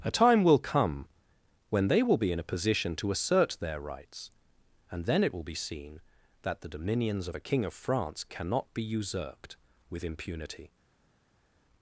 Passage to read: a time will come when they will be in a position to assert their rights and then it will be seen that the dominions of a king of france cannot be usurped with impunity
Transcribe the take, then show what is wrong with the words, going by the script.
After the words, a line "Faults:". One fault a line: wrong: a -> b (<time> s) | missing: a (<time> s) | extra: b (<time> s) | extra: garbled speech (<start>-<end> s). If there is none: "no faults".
a time will come when they will be in a position to assert their rights and then it will be seen that the dominions of a king of france cannot be usurped with impunity
Faults:
no faults